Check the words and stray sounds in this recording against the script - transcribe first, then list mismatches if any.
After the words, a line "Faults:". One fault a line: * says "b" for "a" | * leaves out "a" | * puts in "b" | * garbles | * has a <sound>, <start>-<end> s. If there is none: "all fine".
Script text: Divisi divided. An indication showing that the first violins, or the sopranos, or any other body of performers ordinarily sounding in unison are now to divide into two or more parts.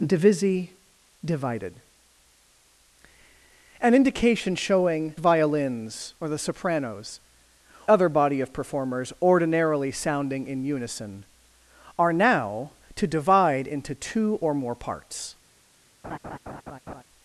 Divisi divided. An indication showing violins, or the sopranos, other body of performers ordinarily sounding in unison are now to divide into two or more parts.
Faults:
* leaves out "that the first"
* leaves out "or any"
* has a laugh, 16.0-17.0 s